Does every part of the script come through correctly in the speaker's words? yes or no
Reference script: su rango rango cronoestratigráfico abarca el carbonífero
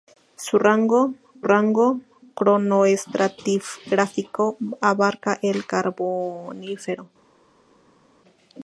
yes